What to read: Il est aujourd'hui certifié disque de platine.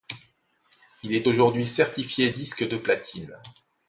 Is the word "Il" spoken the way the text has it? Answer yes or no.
yes